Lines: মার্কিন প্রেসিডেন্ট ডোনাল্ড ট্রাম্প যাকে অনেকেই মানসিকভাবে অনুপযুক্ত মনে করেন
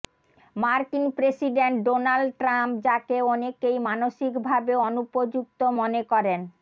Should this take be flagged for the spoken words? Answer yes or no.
no